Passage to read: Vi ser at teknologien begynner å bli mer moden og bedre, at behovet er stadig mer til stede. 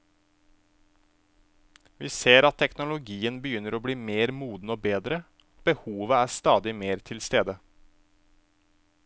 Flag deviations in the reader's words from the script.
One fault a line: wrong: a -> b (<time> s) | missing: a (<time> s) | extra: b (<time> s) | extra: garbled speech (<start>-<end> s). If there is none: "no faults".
no faults